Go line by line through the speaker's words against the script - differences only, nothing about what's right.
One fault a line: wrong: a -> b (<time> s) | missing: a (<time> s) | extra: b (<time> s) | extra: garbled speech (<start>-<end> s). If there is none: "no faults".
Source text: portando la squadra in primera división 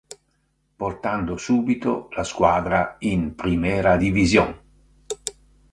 extra: subito (1.4 s)